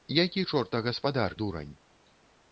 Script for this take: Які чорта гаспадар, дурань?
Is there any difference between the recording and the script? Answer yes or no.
no